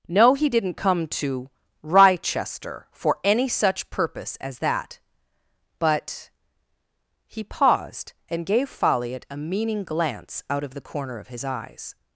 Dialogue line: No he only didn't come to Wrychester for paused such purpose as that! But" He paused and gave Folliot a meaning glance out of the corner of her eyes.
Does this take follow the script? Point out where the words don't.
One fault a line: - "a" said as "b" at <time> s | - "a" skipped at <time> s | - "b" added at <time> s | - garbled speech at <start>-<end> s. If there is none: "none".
- "only" skipped at 0.5 s
- "paused" said as "any" at 3.2 s
- "her" said as "his" at 11.3 s